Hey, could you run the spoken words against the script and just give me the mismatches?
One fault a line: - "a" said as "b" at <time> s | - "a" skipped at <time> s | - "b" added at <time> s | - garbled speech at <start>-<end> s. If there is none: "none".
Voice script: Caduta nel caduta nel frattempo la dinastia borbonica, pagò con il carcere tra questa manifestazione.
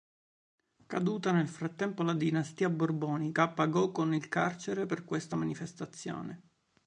- "caduta nel" skipped at 1.5 s
- "tra" said as "per" at 4.8 s